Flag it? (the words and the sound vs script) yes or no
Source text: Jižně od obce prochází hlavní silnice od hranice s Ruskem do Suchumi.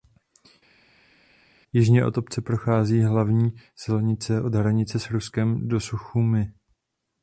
no